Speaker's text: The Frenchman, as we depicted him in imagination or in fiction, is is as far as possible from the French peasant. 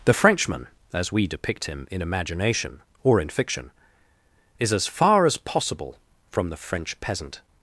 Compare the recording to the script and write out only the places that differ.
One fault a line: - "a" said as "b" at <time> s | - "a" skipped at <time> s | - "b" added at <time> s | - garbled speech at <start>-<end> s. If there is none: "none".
- "depicted" said as "depict" at 1.3 s
- "is" skipped at 4.7 s